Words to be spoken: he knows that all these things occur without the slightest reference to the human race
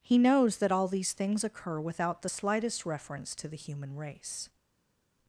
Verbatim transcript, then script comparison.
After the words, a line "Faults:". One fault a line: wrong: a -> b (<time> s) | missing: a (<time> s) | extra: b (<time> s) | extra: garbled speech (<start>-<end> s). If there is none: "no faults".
he knows that all these things occur without the slightest reference to the human race
Faults:
no faults